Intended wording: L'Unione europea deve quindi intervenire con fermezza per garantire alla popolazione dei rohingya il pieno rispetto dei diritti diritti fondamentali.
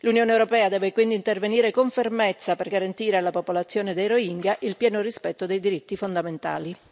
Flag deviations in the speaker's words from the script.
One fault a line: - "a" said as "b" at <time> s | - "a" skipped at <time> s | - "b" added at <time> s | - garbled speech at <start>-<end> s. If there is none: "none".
- "diritti" skipped at 6.0 s